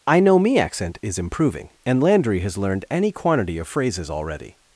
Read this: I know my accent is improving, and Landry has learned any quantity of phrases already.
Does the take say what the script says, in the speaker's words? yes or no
no